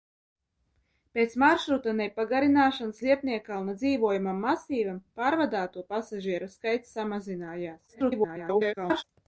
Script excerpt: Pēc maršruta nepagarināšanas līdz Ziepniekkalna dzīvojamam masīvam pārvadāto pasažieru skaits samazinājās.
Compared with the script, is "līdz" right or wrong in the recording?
wrong